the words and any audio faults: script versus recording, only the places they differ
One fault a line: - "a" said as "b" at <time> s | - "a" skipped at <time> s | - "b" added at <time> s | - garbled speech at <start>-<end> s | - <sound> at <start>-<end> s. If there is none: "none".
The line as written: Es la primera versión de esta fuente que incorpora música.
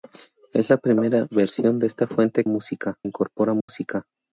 - "que" said as "música" at 2.5 s
- dropout at 3.6-3.7 s